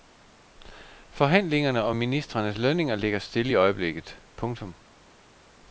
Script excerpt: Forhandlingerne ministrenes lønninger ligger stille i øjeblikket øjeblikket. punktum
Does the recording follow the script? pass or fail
fail